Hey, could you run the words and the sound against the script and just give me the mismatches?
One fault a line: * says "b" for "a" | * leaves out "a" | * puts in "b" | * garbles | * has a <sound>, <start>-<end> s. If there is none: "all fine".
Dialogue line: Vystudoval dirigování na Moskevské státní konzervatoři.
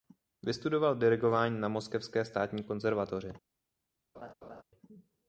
* has a laugh, 4.1-4.6 s